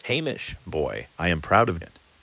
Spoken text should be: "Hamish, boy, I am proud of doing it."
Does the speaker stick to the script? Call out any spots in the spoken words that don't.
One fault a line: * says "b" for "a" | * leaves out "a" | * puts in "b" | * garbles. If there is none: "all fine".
* leaves out "doing"